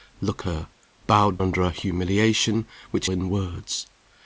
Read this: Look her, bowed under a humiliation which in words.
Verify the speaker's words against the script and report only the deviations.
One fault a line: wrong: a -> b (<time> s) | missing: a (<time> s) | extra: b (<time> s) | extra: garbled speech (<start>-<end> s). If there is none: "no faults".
no faults